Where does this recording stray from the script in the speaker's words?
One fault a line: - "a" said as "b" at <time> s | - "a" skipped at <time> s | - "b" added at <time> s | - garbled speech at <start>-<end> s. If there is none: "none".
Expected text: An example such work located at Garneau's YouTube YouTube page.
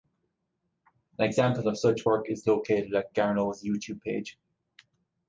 - "of" added at 1.7 s
- "is" added at 2.3 s
- "YouTube" skipped at 4.0 s